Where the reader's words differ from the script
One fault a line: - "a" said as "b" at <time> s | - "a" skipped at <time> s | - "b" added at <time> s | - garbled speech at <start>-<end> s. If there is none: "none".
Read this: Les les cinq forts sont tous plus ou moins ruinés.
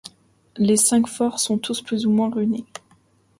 - "les" skipped at 0.8 s